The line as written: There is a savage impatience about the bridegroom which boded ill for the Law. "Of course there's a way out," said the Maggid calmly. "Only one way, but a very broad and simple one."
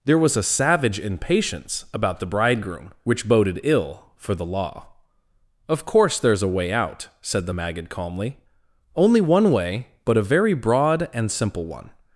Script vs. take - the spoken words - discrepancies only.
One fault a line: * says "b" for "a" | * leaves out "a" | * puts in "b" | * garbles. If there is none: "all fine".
* says "was" for "is"